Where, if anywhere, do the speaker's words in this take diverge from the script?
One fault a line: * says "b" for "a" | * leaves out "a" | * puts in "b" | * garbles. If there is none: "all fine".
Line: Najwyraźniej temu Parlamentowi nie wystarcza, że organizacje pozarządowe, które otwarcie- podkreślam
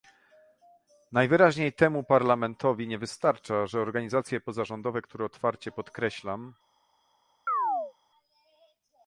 all fine